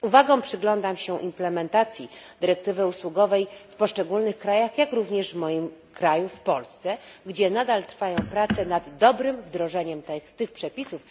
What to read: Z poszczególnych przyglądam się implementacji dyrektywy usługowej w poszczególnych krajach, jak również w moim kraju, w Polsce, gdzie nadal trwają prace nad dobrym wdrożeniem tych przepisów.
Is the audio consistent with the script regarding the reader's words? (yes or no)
no